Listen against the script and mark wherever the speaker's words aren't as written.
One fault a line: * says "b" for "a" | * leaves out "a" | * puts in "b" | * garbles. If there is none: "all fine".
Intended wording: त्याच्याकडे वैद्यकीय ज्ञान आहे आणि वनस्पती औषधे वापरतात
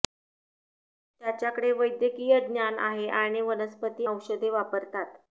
all fine